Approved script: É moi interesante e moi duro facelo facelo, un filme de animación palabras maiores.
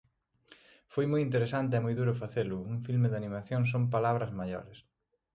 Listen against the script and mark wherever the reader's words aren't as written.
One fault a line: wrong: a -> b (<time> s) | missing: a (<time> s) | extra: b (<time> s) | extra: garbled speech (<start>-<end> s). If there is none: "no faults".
wrong: É -> Foi (0.9 s)
missing: facelo (2.6 s)
extra: son (3.7 s)